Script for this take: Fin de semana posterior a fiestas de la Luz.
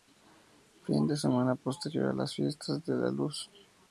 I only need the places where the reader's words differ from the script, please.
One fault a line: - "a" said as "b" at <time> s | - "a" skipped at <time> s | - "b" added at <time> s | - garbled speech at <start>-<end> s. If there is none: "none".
- "las" added at 2.1 s